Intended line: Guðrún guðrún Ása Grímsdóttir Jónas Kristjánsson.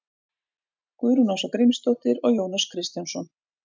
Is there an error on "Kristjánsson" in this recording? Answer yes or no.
no